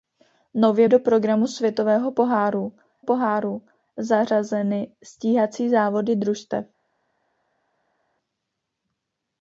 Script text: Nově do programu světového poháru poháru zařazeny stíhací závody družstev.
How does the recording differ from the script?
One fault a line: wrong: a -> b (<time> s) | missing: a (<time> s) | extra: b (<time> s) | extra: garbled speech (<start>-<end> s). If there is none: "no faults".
no faults